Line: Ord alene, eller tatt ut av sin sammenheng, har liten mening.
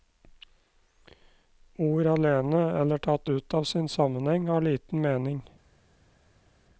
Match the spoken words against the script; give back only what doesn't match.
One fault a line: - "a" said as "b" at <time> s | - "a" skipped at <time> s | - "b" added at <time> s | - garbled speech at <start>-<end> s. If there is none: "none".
none